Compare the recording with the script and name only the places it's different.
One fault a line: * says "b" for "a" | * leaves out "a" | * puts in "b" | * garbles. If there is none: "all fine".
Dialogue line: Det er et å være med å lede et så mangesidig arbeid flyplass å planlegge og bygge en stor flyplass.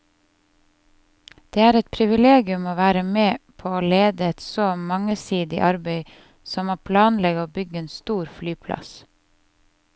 * puts in "privilegium"
* puts in "på"
* says "som" for "flyplass"